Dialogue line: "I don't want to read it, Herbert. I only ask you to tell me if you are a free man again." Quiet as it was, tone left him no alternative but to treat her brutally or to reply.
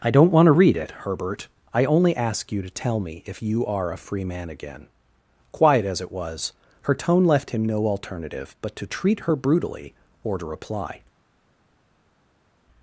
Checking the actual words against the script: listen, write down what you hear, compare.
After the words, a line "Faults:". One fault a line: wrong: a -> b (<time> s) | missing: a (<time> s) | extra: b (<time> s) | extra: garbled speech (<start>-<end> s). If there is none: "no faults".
"I don't want to read it, Herbert. I only ask you to tell me if you are a free man again." Quiet as it was, her tone left him no alternative but to treat her brutally or to reply.
Faults:
extra: her (6.8 s)